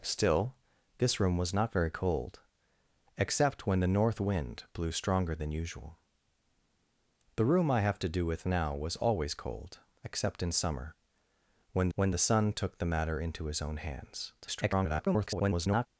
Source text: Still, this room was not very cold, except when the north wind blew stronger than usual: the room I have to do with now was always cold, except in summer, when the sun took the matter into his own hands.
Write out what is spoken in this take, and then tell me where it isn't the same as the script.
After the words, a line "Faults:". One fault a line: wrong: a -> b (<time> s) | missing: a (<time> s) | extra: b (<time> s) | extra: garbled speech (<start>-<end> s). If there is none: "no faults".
Still, this room was not very cold, except when the north wind blew stronger than usual: the room I have to do with now was always cold, except in summer, when when the sun took the matter into his own hands. [garbled]
Faults:
extra: when (11.9 s)
extra: garbled speech (14.4-15.9 s)